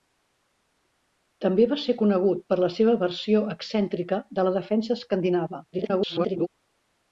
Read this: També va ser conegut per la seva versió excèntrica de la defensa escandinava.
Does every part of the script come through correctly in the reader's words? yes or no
no